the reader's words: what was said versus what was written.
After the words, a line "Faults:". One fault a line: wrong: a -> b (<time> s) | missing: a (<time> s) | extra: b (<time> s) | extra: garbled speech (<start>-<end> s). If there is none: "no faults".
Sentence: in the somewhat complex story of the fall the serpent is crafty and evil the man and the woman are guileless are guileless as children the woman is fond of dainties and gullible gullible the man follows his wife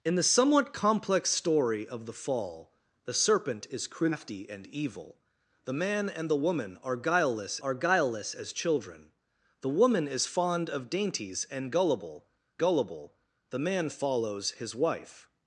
in the somewhat complex story of the fall the serpent is crafty and evil the man and the woman are guileless are guileless as children the woman is fond of dainties and gullible gullible the man follows his wife
Faults:
no faults